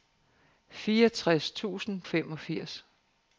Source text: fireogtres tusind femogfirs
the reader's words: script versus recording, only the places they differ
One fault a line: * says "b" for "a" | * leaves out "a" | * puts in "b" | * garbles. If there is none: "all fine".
all fine